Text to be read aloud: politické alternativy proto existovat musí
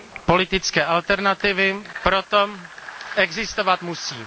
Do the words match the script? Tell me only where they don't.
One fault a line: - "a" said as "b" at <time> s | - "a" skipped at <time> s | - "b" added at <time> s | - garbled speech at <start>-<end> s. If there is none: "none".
none